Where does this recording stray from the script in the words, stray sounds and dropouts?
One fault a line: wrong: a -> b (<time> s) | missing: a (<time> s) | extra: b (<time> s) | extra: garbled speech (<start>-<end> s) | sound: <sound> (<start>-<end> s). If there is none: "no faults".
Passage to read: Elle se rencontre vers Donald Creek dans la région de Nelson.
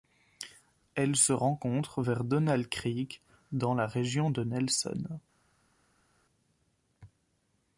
no faults